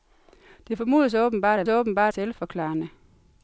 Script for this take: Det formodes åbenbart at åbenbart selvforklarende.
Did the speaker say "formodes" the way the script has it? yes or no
yes